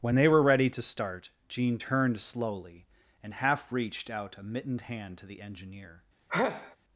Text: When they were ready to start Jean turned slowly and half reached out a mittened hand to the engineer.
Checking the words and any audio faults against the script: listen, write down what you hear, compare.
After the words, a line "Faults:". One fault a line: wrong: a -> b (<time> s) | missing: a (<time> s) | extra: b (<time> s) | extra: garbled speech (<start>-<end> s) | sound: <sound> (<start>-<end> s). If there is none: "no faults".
When they were ready to start Jean turned slowly and half reached out a mittened hand to the engineer.
Faults:
sound: sneeze (6.3-6.8 s)